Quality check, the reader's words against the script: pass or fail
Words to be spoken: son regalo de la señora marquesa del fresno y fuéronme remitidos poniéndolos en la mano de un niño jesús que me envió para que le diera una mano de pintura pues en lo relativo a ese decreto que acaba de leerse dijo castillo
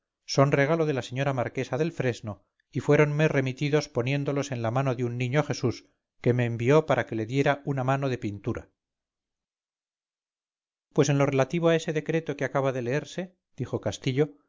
pass